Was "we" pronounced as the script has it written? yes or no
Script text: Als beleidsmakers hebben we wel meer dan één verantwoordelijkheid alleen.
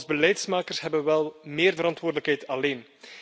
yes